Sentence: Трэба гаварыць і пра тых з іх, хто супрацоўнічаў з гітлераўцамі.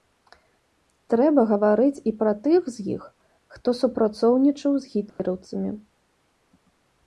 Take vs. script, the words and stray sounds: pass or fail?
fail